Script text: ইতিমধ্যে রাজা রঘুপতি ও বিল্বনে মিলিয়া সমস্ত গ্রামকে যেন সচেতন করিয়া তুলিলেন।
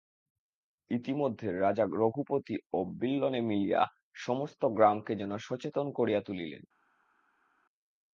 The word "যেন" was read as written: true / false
true